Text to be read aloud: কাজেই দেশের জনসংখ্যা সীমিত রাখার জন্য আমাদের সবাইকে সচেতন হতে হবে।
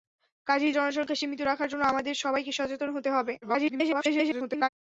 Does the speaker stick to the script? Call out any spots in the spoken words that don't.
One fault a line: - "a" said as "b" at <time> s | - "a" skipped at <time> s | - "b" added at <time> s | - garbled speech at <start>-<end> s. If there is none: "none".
- "দেশের" skipped at 0.8 s
- garbled speech at 3.4-4.7 s